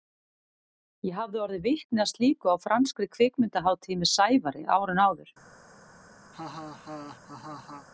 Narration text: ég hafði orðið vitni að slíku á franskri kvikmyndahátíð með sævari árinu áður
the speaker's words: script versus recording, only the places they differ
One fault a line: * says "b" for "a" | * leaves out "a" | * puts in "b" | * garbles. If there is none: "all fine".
all fine